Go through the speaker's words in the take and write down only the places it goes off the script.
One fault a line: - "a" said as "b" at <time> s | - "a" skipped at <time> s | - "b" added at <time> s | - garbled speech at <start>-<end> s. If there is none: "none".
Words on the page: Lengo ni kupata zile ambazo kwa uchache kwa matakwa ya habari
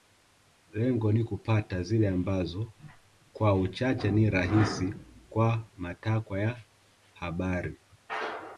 - "ni rahisi" added at 4.1 s